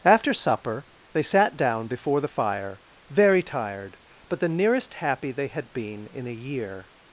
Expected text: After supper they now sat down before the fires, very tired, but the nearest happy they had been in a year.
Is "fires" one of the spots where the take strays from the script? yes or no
yes